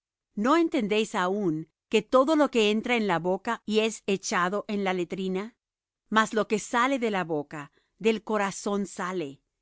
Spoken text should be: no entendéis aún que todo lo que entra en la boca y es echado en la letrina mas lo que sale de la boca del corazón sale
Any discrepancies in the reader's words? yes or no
no